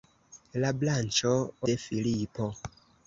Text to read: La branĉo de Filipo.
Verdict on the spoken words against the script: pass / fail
pass